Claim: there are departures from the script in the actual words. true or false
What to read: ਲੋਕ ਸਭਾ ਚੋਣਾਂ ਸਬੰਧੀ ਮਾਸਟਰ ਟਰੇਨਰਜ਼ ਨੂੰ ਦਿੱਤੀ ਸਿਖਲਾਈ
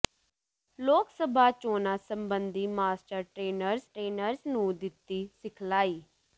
true